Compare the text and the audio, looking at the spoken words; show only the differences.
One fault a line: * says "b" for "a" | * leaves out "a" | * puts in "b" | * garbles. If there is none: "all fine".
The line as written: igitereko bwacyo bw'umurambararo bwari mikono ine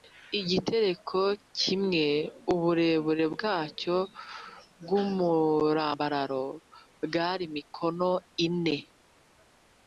* puts in "kimwe uburebure"